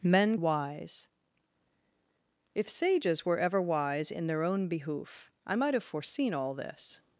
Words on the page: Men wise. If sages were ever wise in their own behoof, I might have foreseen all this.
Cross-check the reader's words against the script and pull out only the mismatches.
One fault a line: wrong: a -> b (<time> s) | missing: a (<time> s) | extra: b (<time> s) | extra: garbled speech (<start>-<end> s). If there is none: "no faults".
no faults